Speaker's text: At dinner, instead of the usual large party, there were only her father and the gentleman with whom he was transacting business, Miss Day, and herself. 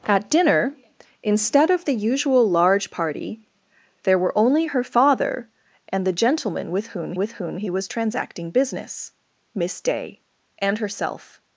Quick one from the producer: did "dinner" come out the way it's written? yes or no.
yes